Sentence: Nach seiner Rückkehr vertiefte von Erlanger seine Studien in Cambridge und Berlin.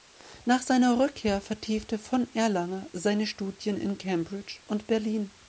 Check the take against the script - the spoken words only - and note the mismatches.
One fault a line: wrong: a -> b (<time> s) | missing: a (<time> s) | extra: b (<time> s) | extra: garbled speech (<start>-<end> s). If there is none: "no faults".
no faults